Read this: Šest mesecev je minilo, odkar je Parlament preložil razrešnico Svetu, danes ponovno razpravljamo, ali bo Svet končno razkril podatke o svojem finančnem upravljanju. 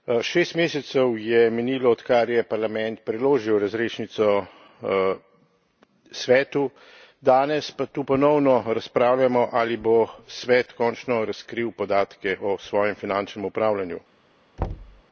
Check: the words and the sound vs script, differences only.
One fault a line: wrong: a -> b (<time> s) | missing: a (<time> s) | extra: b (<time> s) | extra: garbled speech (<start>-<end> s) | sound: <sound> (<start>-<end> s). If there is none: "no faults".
extra: pa tu (7.7 s)
sound: thud (14.6-15.0 s)